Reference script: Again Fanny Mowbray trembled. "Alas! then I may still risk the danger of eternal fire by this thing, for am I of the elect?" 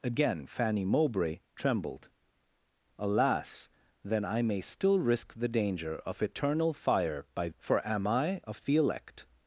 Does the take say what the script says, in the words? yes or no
no